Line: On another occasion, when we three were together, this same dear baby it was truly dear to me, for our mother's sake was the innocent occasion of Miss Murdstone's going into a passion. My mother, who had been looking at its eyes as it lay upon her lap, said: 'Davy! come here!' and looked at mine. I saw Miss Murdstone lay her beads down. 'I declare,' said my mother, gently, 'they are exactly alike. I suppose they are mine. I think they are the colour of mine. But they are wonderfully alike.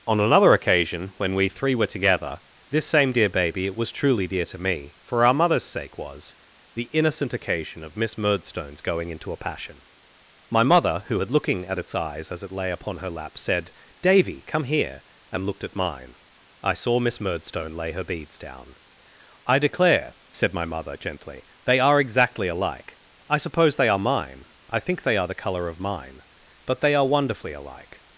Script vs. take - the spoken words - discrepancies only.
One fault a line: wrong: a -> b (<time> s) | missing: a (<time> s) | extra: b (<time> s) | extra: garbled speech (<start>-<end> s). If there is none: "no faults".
missing: been (11.3 s)